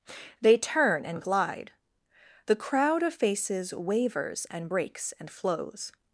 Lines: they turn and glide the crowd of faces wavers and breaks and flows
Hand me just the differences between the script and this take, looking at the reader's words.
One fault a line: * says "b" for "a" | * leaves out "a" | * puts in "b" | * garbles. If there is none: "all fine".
all fine